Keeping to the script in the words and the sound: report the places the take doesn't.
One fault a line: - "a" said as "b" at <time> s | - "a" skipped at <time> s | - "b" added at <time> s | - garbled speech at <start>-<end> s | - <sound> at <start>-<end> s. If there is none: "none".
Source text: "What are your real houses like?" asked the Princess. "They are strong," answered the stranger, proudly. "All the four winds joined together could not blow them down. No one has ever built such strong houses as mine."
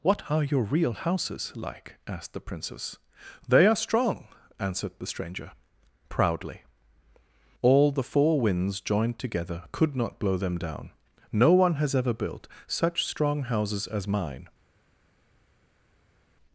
none